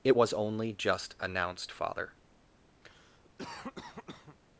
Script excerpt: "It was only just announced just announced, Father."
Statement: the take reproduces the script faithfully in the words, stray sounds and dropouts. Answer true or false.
false